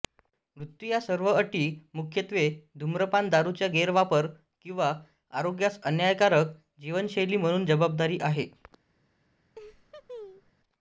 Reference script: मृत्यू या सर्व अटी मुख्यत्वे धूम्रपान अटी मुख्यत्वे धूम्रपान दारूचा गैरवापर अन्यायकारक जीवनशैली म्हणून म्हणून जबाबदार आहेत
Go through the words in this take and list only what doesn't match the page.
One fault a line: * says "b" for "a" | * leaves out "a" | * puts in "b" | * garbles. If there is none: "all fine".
* says "दारूचा गैरवापर किंवा आरोग्यास" for "अटी मुख्यत्वे धूम्रपान दारूचा गैरवापर"
* leaves out "म्हणून"